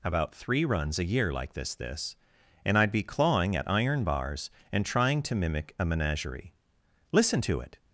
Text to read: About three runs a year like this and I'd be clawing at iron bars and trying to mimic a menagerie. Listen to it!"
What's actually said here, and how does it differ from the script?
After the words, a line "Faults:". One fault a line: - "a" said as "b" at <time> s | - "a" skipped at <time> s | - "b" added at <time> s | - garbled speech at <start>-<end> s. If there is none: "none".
About three runs a year like this this and I'd be clawing at iron bars and trying to mimic a menagerie. Listen to it!"
Faults:
- "this" added at 1.8 s